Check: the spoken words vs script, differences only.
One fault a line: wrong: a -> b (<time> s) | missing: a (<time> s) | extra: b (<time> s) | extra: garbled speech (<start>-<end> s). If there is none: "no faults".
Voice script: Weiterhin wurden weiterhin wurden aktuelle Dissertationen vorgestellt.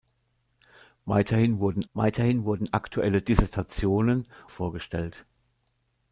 no faults